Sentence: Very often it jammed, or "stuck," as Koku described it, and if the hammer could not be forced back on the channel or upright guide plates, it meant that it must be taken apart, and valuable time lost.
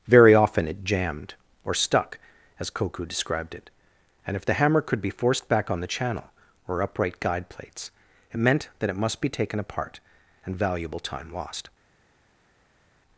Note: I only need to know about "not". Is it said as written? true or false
false